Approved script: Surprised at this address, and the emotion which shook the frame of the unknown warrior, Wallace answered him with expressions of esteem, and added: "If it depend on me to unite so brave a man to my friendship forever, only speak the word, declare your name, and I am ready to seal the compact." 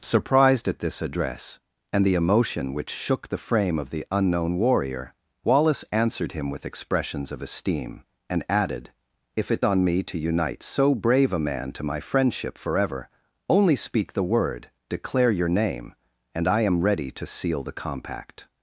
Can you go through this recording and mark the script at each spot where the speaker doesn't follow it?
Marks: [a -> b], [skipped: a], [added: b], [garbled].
Surprised at this address, and the emotion which shook the frame of the unknown warrior, Wallace answered him with expressions of esteem, and added: "If it [skipped: depend] on me to unite so brave a man to my friendship forever, only speak the word, declare your name, and I am ready to seal the compact."